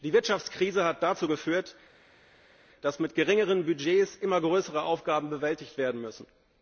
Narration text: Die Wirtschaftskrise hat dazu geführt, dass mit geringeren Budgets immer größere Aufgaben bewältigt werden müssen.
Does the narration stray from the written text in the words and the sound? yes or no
no